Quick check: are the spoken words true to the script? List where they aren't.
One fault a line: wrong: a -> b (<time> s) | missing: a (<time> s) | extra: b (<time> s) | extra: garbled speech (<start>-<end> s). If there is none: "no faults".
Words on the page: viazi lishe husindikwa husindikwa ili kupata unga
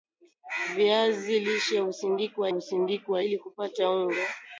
no faults